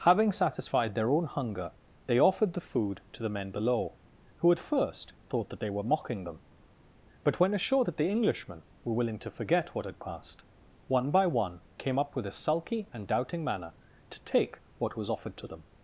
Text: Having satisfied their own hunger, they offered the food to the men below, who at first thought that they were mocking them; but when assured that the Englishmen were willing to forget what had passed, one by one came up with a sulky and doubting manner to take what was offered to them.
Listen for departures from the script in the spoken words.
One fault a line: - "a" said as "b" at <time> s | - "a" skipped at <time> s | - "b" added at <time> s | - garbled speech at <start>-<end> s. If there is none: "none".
none